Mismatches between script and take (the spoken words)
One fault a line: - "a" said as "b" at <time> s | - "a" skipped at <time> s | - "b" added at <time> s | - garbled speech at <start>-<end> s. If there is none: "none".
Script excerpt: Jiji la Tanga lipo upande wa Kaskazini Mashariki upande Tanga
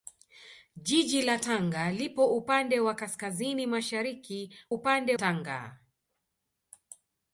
none